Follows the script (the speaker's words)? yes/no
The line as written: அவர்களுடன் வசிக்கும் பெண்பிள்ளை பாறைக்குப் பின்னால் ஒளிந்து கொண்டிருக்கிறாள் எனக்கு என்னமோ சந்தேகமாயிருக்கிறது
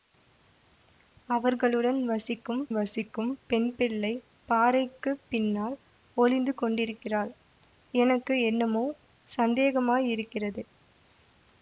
no